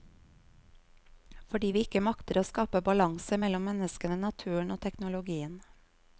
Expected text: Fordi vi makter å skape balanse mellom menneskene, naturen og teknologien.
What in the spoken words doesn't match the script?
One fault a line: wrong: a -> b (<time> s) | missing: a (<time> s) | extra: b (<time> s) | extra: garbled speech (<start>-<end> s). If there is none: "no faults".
extra: ikke (1.9 s)